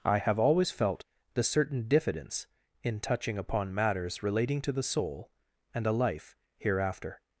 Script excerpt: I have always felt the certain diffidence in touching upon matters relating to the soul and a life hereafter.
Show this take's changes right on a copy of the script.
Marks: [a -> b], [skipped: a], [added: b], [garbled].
I have always felt the certain diffidence in touching upon matters relating to the soul and a life hereafter.